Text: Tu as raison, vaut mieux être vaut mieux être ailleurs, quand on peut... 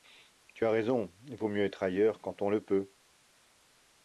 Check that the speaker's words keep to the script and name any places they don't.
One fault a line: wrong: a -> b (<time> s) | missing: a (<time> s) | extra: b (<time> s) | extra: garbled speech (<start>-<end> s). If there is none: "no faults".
missing: vaut mieux être (1.8 s)
extra: le (2.5 s)